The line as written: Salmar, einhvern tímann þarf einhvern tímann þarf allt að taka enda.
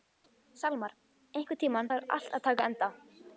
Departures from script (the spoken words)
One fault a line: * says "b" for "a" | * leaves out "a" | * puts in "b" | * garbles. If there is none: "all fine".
* leaves out "einhvern tímann þarf"